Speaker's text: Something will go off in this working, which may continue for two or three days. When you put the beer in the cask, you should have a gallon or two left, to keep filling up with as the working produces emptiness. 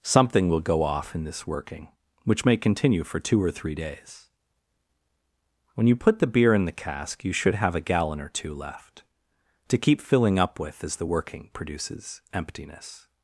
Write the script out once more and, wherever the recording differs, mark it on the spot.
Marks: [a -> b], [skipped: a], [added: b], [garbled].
Something will go off in this working, which may continue for two or three days. When you put the beer in the cask, you should have a gallon or two left, to keep filling up with as the working produces emptiness.